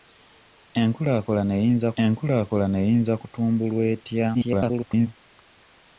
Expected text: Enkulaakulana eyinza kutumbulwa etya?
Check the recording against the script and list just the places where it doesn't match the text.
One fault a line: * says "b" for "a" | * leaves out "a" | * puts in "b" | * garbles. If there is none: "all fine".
* puts in "enkulaakulana eyinza"
* garbles